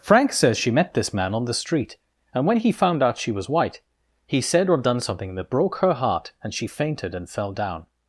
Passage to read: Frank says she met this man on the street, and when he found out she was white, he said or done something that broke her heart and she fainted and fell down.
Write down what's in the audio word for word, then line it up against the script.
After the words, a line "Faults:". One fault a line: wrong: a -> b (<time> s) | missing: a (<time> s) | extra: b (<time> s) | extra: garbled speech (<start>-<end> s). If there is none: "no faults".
Frank says she met this man on the street, and when he found out she was white, he said or done something that broke her heart and she fainted and fell down.
Faults:
no faults